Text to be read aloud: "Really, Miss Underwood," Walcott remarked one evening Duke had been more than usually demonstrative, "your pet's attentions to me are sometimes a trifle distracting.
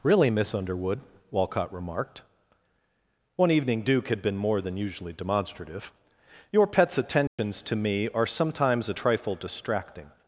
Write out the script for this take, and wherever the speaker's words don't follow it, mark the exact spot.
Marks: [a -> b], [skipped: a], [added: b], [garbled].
"Really, Miss Underwood," Walcott remarked one evening Duke had been more than usually demonstrative, "your pet's attentions to me are sometimes a trifle distracting.